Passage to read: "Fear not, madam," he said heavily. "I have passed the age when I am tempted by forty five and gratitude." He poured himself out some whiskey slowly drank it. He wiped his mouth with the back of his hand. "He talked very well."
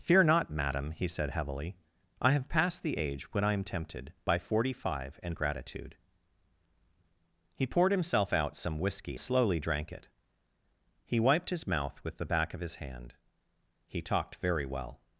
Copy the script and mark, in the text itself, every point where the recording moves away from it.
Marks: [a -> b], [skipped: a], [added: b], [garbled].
"Fear not, madam," he said heavily. "I have passed the age when I am tempted by forty five and gratitude." He poured himself out some whiskey slowly drank it. He wiped his mouth with the back of his hand. "He talked very well."